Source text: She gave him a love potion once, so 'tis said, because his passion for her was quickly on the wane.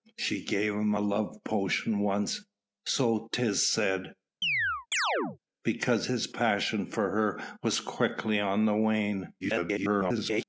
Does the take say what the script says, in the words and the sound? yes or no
no